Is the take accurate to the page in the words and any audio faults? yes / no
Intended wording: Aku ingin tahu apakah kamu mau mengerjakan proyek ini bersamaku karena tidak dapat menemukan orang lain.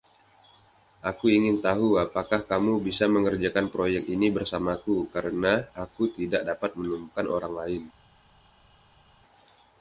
no